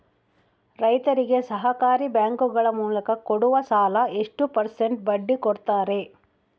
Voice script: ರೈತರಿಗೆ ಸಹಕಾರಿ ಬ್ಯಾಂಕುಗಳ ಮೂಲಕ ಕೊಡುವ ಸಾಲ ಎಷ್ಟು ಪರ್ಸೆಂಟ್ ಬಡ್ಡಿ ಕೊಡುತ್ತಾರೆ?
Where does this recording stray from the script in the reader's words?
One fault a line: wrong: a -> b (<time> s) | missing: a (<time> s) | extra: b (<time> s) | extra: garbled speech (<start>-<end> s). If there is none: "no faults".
no faults